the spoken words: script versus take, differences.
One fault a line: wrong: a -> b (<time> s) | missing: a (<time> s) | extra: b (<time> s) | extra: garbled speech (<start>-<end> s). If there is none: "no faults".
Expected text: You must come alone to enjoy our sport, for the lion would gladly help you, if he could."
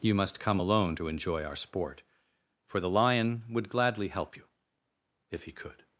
no faults